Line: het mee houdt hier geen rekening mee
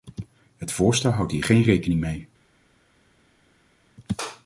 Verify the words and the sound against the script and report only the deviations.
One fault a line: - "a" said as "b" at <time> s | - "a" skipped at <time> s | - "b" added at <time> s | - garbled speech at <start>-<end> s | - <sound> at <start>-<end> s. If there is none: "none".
- "mee" said as "voorstel" at 0.7 s